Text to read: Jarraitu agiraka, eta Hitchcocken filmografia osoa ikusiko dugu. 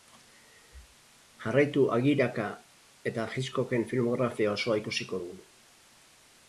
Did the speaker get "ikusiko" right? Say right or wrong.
right